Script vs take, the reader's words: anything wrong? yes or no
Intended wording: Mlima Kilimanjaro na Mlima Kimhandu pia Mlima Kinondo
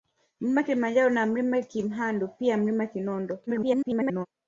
yes